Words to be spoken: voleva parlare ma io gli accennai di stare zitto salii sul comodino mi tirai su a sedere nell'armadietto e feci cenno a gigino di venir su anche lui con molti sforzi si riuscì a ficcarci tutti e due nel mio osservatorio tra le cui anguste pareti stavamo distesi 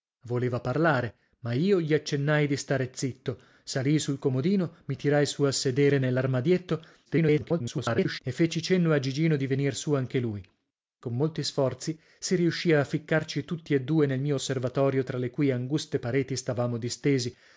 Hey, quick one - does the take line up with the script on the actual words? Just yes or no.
no